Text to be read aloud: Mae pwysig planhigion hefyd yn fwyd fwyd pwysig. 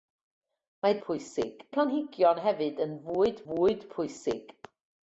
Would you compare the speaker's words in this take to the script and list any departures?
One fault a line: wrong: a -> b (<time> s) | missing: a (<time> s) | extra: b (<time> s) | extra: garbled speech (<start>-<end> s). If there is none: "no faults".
no faults